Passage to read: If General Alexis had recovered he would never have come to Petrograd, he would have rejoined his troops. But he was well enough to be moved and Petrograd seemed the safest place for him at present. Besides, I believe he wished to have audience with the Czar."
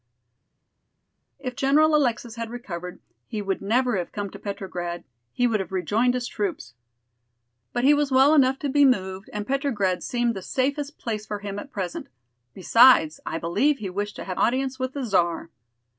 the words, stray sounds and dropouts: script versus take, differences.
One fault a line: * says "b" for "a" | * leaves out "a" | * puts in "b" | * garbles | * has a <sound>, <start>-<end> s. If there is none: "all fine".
all fine